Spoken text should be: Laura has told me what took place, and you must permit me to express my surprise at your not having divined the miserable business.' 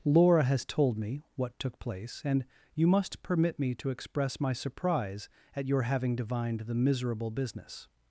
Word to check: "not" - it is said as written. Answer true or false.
false